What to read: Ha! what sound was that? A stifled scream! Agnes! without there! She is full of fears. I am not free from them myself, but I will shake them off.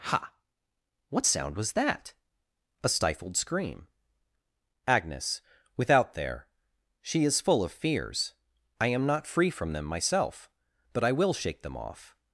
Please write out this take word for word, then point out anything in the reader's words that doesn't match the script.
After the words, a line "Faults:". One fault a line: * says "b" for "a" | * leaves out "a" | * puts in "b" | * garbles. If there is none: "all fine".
Ha! what sound was that? A stifled scream! Agnes! without there! She is full of fears. I am not free from them myself, but I will shake them off.
Faults:
all fine